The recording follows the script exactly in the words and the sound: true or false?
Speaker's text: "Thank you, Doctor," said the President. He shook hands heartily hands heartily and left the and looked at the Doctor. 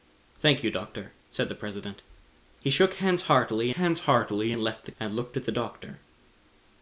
true